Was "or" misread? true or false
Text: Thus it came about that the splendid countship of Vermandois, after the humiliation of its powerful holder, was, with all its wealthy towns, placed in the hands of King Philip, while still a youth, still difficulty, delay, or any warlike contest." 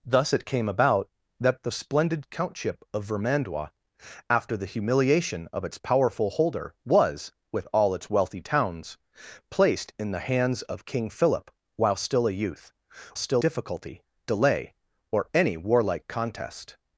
false